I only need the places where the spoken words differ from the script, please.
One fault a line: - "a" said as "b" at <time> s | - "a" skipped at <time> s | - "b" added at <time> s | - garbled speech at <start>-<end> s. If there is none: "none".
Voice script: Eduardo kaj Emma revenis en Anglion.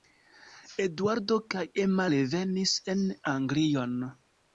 none